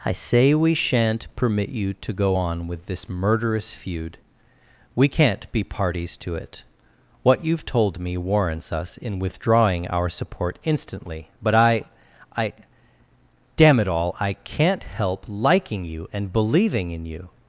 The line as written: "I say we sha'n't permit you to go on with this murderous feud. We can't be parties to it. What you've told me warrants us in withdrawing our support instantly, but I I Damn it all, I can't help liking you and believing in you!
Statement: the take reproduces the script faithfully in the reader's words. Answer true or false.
true